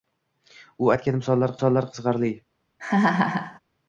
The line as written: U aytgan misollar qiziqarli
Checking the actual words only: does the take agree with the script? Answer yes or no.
no